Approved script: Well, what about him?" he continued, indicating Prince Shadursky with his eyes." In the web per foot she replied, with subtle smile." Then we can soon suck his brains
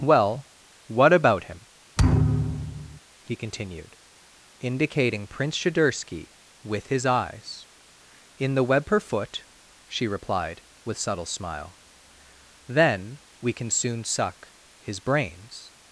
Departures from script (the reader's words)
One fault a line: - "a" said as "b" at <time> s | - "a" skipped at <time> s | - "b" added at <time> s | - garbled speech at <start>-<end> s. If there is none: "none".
none